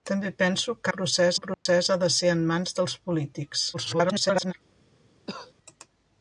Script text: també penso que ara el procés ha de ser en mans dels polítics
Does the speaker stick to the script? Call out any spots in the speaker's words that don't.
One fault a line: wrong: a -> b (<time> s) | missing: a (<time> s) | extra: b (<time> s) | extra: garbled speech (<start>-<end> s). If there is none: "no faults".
wrong: ara -> procés (0.9 s)
extra: garbled speech (3.7-4.5 s)